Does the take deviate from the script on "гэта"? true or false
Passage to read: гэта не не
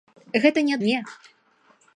false